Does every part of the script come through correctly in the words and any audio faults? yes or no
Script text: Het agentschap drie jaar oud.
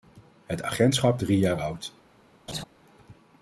no